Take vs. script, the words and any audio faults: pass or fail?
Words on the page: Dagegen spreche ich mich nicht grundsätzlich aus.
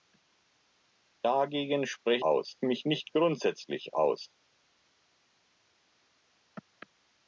fail